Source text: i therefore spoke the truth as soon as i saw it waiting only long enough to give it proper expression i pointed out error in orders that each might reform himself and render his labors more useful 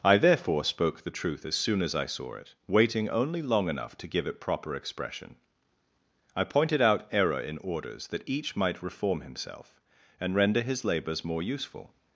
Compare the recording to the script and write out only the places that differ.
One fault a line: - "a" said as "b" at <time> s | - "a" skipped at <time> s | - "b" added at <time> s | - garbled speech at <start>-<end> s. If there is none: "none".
none